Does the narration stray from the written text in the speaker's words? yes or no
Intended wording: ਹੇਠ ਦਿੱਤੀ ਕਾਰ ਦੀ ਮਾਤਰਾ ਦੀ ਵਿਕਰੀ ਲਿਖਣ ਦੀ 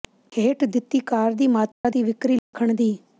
no